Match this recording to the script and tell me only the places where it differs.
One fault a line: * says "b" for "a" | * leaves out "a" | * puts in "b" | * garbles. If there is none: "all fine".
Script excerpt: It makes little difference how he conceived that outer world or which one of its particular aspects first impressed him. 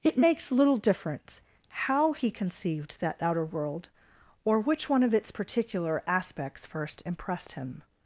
all fine